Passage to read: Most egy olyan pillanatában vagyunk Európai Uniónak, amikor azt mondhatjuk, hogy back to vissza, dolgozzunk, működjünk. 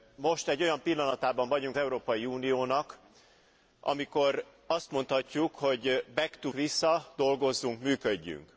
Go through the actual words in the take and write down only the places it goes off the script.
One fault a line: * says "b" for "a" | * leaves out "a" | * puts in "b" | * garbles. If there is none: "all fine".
all fine